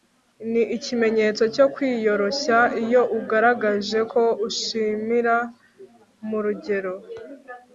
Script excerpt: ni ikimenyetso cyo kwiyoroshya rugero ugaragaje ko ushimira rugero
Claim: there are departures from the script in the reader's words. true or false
true